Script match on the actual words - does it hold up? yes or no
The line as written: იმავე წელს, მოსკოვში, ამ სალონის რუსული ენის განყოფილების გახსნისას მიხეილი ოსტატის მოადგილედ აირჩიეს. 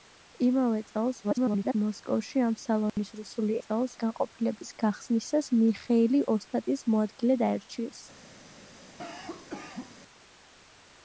no